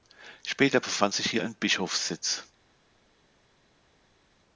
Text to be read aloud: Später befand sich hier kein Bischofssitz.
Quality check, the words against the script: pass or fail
fail